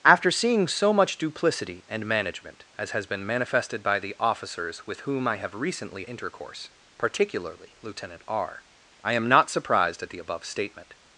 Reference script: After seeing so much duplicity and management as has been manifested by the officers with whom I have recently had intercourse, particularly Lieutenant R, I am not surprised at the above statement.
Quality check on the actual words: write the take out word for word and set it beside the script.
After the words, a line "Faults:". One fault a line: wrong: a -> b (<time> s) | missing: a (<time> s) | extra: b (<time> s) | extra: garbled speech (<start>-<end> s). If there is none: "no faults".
After seeing so much duplicity and management as has been manifested by the officers with whom I have recently intercourse, particularly Lieutenant R, I am not surprised at the above statement.
Faults:
missing: had (6.0 s)